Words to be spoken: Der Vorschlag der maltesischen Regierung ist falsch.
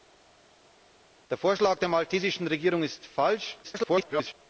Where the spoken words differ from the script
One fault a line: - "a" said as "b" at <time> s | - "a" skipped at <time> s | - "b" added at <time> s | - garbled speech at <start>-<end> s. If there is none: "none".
- garbled speech at 3.6-4.3 s